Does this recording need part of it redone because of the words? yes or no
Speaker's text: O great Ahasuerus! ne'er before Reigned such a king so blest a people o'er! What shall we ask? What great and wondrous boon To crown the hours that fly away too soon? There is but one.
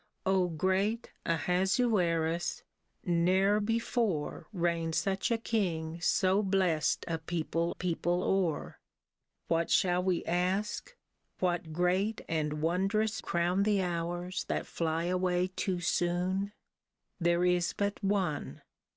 yes